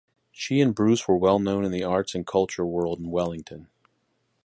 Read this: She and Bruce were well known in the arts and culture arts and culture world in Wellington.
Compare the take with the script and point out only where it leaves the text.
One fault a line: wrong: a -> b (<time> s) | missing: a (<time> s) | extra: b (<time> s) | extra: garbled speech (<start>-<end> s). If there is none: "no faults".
missing: arts and culture (2.6 s)